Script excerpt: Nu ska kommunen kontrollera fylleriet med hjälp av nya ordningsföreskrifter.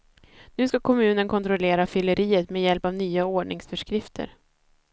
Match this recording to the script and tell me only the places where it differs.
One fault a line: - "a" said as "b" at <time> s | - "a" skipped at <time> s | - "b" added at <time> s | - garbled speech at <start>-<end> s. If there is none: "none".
none